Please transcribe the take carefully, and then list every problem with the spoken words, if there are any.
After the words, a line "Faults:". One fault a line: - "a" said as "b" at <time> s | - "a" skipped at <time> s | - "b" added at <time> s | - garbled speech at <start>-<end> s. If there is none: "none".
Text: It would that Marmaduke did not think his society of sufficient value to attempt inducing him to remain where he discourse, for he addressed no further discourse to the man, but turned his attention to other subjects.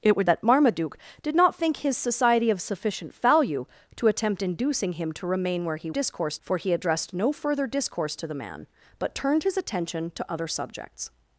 It would that Marmaduke did not think his society of sufficient value to attempt inducing him to remain where he discourse, for he addressed no further discourse to the man, but turned his attention to other subjects.
Faults:
none